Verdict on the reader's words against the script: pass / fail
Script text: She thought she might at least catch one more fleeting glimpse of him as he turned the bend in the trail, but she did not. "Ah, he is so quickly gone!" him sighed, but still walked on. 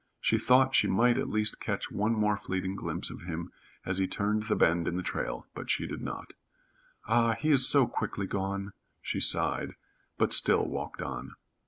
fail